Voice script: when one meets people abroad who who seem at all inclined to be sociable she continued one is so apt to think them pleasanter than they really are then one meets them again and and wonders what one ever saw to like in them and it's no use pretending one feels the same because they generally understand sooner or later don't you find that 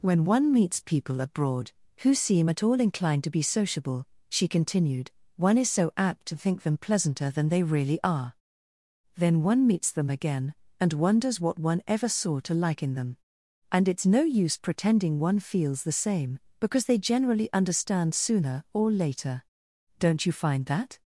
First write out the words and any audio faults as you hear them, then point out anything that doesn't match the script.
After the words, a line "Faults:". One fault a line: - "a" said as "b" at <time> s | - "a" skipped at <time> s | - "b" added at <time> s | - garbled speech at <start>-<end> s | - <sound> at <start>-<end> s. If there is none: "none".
when one meets people abroad who seem at all inclined to be sociable she continued one is so apt to think them pleasanter than they really are then one meets them again and wonders what one ever saw to like in them and it's no use pretending one feels the same because they generally understand sooner or later don't you find that
Faults:
- "who" skipped at 2.1 s
- "and" skipped at 10.9 s